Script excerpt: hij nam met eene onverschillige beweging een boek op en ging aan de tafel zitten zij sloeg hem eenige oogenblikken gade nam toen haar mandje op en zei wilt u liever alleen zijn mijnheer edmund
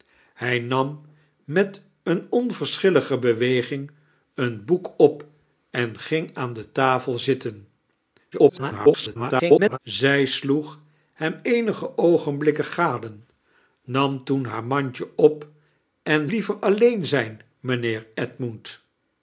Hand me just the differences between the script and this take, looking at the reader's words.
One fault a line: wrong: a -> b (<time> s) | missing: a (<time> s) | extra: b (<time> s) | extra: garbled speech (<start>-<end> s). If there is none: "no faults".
extra: garbled speech (8.3-9.8 s)
missing: zei wilt u (16.3 s)